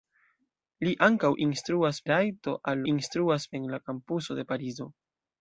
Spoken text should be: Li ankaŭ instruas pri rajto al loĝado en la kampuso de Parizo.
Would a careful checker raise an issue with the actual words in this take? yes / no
yes